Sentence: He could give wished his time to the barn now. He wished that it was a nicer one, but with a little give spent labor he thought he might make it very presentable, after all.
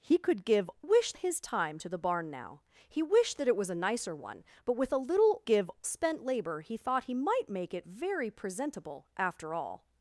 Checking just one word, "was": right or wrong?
right